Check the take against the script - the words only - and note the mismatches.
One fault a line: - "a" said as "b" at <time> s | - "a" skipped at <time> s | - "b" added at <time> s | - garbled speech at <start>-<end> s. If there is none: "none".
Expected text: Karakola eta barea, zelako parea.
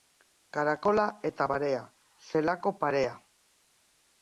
none